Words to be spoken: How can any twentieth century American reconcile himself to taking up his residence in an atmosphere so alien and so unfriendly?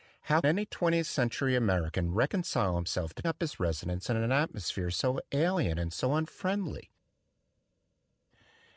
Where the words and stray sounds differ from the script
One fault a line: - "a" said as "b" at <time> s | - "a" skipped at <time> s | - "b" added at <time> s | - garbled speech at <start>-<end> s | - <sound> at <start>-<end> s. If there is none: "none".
- "can" skipped at 0.4 s
- "taking" skipped at 3.2 s